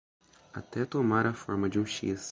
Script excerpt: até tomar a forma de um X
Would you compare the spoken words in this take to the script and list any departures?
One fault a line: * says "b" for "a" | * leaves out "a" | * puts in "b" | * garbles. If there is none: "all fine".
all fine